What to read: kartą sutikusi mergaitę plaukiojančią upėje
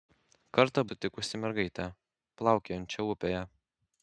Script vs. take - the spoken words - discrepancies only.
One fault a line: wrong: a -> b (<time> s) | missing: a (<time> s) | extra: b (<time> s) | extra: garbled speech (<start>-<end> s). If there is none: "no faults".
no faults